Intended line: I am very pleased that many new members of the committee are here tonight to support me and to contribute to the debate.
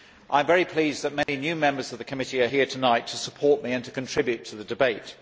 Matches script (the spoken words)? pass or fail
pass